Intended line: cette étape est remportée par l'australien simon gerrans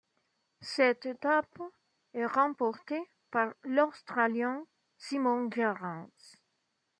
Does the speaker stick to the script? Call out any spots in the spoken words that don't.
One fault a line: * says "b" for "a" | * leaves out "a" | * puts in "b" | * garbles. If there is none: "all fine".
all fine